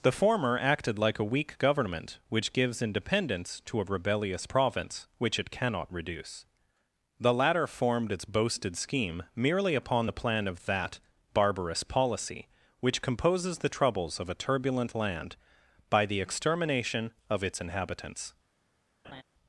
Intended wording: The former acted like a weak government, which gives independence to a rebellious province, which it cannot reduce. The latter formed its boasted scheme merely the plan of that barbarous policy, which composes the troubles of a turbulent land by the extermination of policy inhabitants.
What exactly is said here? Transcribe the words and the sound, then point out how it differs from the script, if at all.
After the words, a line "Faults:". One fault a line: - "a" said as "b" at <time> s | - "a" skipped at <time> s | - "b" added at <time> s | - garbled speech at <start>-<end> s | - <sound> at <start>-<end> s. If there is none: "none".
The former acted like a weak government, which gives independence to a rebellious province, which it cannot reduce. The latter formed its boasted scheme merely upon the plan of that barbarous policy, which composes the troubles of a turbulent land by the extermination of its inhabitants.
Faults:
- "upon" added at 9.7 s
- "policy" said as "its" at 17.4 s
- laugh at 19.0-19.2 s